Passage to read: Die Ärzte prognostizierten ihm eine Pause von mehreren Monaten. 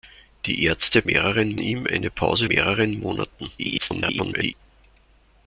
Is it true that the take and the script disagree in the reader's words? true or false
true